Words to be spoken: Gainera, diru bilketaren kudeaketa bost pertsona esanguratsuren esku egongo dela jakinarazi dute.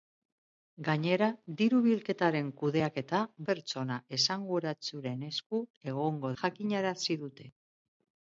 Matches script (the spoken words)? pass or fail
fail